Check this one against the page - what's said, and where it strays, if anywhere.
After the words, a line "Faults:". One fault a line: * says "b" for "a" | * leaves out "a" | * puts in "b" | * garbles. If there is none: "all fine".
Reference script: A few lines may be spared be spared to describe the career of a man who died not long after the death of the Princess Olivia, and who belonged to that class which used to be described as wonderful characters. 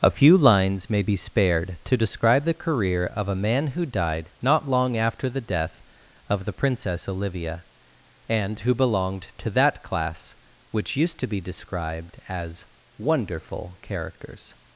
A few lines may be spared to describe the career of a man who died not long after the death of the Princess Olivia, and who belonged to that class which used to be described as wonderful characters.
Faults:
* leaves out "be spared"